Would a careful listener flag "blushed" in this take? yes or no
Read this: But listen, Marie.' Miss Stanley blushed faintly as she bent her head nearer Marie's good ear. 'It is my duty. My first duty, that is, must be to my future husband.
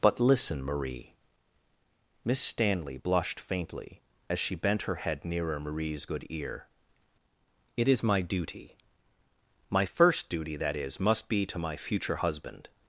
no